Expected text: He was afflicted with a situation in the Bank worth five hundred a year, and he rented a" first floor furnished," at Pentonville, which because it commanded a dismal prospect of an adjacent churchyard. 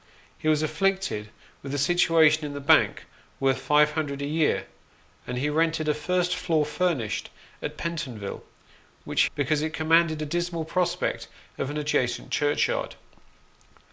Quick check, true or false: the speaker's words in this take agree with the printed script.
true